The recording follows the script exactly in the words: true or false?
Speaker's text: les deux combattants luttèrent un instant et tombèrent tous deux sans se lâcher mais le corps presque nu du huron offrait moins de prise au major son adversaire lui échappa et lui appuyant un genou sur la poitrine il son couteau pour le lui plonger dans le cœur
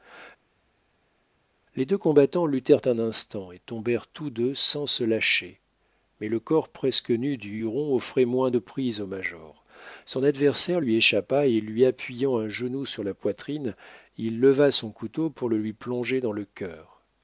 false